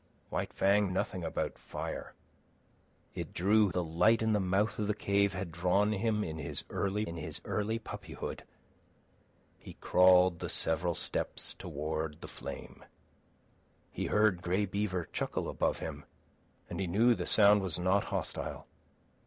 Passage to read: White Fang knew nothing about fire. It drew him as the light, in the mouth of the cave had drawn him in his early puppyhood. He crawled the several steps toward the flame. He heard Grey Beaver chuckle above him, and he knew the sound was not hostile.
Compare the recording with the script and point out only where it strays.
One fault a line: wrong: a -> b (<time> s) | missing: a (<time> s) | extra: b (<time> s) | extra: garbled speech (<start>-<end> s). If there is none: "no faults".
missing: knew (0.9 s)
missing: him as (3.7 s)
extra: in his early (7.0 s)